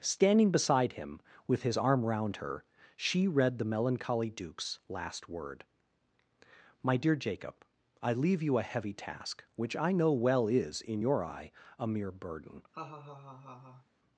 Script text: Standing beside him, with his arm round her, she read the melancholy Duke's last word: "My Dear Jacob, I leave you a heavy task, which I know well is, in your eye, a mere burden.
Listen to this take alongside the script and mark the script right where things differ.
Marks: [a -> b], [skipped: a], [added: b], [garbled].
Standing beside him, with his arm round her, she read the melancholy Duke's last word: "My Dear Jacob, I leave you a heavy task, which I know well is, in your eye, a mere burden.